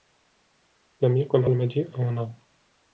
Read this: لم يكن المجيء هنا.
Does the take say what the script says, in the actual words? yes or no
yes